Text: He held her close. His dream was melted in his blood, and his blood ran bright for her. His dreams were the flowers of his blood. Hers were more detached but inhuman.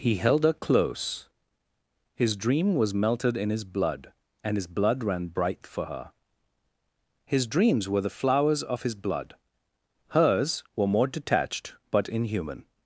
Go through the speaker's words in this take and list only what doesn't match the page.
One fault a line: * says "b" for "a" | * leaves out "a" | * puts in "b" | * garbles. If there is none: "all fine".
all fine